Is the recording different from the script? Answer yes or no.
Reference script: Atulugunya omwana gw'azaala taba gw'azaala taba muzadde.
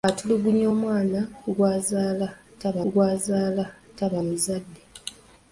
no